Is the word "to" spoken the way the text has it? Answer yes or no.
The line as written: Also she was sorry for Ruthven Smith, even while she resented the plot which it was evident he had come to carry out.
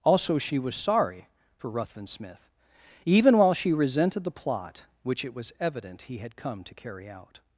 yes